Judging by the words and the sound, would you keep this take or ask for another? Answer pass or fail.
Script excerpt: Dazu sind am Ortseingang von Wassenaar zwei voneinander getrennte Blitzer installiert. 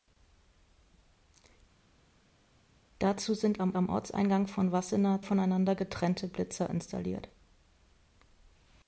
fail